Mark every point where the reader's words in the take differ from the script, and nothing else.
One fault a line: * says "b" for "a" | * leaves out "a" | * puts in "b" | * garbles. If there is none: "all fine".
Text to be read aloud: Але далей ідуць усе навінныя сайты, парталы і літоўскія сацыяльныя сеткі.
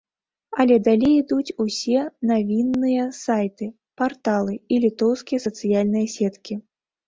all fine